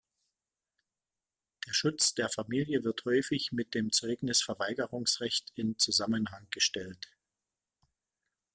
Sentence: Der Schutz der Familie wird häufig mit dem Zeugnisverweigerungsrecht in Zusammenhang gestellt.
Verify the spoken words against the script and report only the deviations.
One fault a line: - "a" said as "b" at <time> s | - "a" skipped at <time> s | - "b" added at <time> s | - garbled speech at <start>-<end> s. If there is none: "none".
none